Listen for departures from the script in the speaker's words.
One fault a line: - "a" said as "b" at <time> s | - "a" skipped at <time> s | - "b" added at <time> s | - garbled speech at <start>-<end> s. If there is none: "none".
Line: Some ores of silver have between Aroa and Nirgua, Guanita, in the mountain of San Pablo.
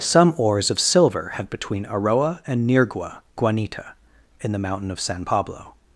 none